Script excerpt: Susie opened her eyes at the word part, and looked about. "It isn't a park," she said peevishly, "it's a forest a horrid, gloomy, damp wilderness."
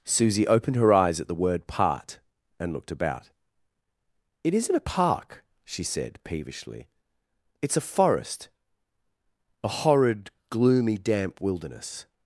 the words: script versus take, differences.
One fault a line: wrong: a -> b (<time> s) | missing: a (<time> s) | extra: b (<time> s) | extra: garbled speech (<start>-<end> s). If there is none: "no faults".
no faults